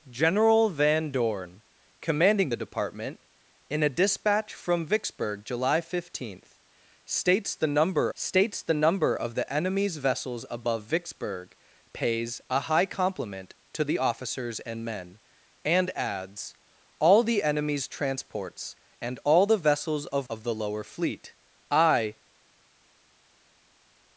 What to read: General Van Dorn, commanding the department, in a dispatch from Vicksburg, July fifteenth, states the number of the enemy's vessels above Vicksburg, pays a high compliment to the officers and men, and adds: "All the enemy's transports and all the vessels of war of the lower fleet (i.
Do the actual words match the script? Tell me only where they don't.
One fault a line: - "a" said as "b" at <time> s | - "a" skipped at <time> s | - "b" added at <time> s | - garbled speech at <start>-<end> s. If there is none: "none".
- "states the number" added at 8.1 s
- "war" skipped at 20.3 s